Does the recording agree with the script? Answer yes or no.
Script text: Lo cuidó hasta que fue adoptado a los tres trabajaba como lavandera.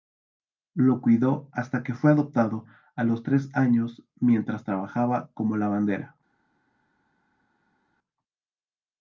no